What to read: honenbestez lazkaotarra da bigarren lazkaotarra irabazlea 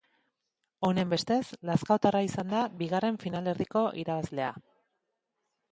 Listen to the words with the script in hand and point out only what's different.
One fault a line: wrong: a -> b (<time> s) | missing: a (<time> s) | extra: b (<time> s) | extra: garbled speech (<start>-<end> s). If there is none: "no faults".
extra: izan (2.3 s)
wrong: lazkaotarra -> finalerdiko (3.2 s)